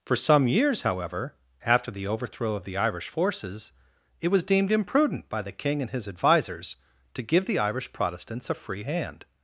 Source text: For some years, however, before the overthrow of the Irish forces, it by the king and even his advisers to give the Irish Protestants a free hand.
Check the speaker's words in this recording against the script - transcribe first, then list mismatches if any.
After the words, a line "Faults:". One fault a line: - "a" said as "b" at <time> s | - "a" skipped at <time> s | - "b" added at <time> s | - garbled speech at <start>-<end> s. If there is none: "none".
For some years, however, after the overthrow of the Irish forces, it was deemed imprudent by the king and his advisers to give the Irish Protestants a free hand.
Faults:
- "before" said as "after" at 1.6 s
- "was deemed imprudent" added at 4.3 s
- "even" skipped at 5.9 s